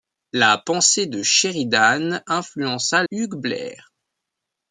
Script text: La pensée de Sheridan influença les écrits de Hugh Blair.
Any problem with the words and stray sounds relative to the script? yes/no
yes